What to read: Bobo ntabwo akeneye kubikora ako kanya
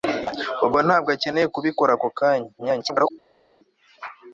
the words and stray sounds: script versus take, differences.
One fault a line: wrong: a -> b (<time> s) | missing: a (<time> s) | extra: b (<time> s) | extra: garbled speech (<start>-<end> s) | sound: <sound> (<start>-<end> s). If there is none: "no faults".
extra: garbled speech (2.6-3.1 s)